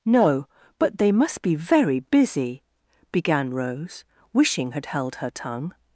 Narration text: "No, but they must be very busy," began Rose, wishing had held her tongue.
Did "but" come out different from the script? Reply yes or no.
no